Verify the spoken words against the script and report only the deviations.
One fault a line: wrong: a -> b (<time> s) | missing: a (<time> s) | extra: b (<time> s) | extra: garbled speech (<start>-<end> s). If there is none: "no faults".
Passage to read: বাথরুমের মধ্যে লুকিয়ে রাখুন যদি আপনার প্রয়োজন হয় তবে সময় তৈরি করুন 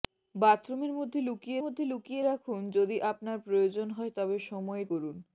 extra: মধ্যে লুকিয়ে (1.6 s)
missing: তৈরি (4.8 s)